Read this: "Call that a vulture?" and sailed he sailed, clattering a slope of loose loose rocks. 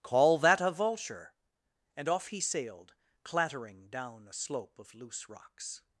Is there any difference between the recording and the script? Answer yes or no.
yes